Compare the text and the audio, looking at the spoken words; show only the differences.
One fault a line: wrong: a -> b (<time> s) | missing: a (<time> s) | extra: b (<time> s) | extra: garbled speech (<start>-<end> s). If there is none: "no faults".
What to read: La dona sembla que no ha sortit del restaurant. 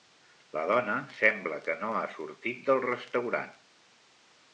no faults